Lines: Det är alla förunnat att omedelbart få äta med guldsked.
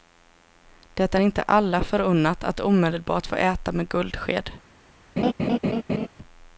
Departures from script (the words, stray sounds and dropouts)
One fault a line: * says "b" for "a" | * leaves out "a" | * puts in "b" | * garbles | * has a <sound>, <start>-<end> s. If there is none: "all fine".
* puts in "inte"
* has a laugh, 5.2-6.1 s